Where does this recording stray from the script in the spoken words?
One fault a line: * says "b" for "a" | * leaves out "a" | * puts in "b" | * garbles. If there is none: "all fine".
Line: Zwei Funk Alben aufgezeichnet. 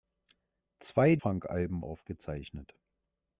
all fine